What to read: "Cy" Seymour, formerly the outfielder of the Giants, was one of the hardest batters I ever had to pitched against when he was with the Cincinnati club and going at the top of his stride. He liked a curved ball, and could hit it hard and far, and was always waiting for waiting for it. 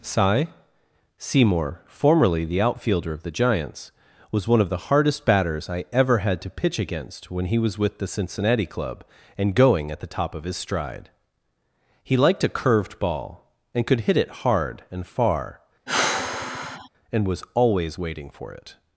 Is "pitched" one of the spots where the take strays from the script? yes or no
yes